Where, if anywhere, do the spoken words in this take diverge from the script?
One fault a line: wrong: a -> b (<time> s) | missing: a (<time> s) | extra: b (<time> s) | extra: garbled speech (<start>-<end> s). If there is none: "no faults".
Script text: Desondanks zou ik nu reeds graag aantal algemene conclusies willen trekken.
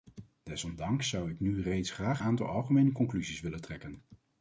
no faults